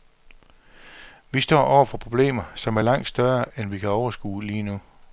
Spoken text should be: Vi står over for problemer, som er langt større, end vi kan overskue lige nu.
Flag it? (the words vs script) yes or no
no